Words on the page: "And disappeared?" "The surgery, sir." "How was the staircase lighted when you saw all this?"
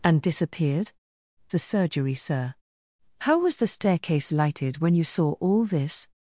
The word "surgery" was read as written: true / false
true